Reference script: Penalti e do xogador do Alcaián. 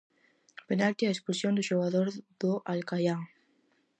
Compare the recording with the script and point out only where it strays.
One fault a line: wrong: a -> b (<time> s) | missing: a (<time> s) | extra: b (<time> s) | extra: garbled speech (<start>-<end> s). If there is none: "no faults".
extra: expulsión (1.1 s)